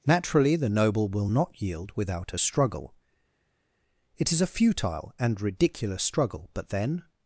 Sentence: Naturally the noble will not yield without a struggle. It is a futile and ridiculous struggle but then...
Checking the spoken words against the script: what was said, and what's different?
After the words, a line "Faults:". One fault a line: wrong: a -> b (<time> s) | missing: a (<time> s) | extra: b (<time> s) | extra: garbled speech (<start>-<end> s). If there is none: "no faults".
Naturally the noble will not yield without a struggle. It is a futile and ridiculous struggle but then...
Faults:
no faults